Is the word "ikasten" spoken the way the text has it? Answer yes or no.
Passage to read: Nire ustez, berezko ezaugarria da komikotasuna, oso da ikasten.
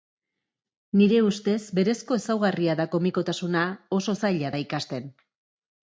yes